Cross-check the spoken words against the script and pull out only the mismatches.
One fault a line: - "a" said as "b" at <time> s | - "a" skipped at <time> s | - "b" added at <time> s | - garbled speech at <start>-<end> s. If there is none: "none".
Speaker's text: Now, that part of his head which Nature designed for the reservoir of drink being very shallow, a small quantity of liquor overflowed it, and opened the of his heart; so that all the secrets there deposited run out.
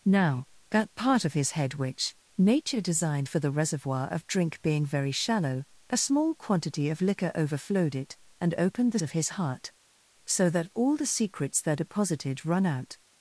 none